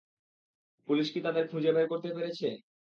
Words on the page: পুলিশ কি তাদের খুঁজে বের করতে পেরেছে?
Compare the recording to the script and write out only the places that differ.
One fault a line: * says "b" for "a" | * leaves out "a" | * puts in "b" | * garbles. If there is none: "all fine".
all fine